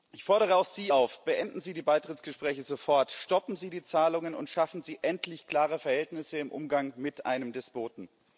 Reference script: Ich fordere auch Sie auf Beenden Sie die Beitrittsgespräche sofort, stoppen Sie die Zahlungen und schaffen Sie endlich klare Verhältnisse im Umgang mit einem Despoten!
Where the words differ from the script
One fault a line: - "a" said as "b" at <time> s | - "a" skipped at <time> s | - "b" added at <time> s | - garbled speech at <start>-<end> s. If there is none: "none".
none